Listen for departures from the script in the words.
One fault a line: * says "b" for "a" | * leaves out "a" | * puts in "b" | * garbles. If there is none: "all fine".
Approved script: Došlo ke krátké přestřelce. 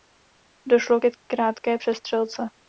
all fine